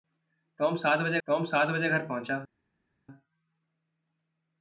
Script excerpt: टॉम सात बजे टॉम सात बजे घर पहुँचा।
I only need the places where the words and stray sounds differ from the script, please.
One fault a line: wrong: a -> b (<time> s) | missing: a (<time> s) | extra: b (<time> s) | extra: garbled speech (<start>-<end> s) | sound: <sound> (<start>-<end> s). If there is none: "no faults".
no faults